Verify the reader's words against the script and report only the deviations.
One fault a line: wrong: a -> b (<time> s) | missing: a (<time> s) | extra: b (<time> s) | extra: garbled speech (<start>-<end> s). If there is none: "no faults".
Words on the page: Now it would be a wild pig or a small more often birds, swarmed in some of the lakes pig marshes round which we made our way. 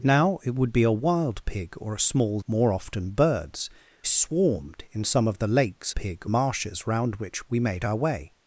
no faults